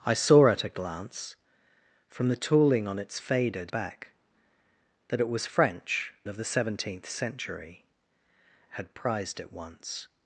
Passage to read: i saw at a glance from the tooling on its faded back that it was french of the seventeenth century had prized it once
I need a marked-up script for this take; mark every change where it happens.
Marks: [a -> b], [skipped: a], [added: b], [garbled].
i saw at a glance from the tooling on its faded back that it was french of the seventeenth century had prized it once